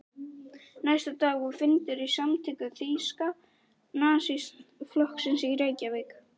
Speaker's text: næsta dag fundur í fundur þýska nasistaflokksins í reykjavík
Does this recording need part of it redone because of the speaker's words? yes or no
yes